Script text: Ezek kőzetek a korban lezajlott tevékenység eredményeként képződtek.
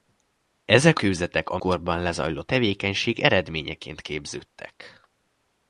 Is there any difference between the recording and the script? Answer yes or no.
no